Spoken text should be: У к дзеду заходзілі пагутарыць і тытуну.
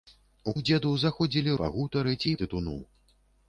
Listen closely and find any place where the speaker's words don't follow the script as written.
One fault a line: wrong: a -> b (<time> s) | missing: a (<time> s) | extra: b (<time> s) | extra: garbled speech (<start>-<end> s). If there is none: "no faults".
no faults